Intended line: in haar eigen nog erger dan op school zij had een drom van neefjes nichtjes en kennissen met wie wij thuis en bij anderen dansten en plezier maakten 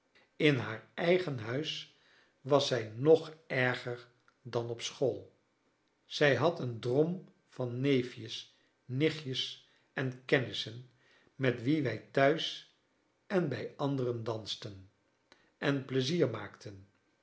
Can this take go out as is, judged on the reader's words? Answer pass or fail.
fail